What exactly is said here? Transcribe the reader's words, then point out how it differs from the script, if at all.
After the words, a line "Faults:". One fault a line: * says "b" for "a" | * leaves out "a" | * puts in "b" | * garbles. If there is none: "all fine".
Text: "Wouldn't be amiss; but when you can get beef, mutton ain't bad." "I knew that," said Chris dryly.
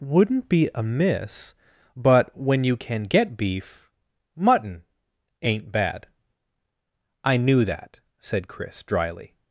"Wouldn't be amiss; but when you can get beef, mutton ain't bad." "I knew that," said Chris dryly.
Faults:
all fine